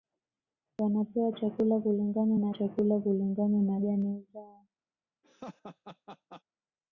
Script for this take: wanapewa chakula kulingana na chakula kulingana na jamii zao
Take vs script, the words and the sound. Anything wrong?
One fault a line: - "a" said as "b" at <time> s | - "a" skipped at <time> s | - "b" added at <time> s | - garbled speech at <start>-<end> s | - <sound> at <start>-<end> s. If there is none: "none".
- laugh at 5.2-6.4 s